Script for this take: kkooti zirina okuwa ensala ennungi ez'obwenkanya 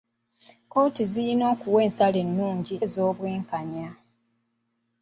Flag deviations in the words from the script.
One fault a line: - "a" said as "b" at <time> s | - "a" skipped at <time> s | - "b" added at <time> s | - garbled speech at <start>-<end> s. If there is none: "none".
none